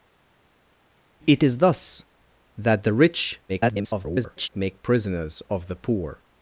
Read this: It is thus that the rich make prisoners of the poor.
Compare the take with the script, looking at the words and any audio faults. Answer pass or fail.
fail